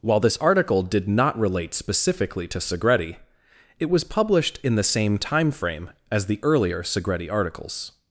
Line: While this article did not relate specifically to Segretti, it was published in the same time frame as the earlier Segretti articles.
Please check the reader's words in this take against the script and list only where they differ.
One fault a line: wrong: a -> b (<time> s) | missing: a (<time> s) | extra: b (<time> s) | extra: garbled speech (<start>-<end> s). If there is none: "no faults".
no faults